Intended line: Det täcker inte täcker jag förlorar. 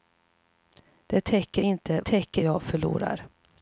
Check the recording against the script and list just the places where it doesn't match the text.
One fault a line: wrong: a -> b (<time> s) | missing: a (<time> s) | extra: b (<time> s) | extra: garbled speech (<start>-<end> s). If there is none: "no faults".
no faults